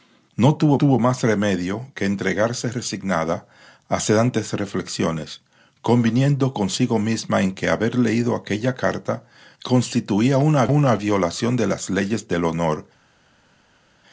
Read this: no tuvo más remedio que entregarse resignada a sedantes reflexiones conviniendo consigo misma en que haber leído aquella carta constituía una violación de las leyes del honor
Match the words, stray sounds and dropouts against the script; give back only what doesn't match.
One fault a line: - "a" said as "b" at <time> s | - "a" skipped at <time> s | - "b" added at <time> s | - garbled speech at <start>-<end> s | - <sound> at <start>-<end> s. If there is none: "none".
- "tuvo" added at 0.7 s
- "una" added at 10.7 s